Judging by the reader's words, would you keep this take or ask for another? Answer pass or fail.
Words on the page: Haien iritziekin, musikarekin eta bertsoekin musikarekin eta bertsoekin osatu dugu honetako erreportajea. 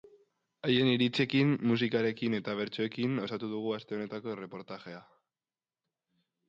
fail